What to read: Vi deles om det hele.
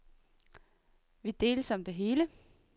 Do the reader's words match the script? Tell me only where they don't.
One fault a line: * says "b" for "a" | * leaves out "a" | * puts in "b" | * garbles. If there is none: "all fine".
all fine